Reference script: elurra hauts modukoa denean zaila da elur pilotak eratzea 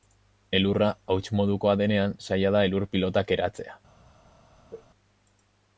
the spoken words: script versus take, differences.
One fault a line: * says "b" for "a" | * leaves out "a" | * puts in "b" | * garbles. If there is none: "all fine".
all fine